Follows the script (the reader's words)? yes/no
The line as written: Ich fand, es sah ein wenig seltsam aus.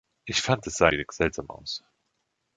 no